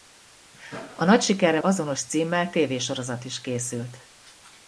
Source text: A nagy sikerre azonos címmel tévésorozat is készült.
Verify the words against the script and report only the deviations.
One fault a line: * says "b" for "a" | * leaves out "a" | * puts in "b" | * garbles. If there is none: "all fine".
all fine